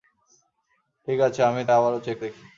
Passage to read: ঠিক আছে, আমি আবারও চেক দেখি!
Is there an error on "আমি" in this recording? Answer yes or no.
no